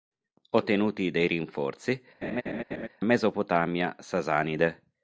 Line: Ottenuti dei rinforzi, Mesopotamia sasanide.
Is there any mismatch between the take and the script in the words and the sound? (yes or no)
yes